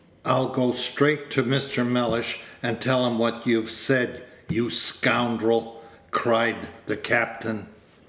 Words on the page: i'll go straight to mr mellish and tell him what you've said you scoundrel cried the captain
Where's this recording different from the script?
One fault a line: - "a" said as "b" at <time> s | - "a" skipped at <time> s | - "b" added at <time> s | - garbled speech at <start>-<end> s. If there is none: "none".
none